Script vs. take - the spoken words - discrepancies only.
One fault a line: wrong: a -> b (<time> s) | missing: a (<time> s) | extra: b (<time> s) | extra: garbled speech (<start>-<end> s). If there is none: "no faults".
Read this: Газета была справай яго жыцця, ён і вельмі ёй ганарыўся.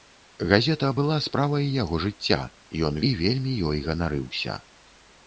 no faults